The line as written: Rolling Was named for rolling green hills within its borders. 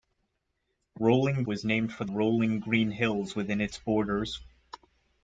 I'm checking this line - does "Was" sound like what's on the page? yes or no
yes